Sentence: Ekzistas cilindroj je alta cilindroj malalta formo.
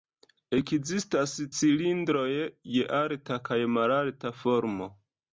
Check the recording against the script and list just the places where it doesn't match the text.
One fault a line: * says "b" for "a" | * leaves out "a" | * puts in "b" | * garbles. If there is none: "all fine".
* says "kaj" for "cilindroj"